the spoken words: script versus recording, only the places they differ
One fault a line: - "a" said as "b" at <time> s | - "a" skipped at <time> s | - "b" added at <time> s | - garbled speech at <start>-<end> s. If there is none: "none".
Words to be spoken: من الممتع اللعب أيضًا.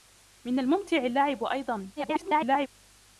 - garbled speech at 2.0-2.7 s